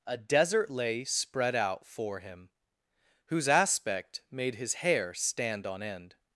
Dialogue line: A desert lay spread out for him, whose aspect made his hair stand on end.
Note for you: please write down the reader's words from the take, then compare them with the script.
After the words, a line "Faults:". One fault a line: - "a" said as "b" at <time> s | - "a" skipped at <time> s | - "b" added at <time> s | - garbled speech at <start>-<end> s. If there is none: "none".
A desert lay spread out for him, whose aspect made his hair stand on end.
Faults:
none